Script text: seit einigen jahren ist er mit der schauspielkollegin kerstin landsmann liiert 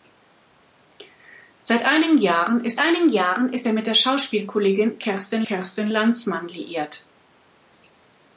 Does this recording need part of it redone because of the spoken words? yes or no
yes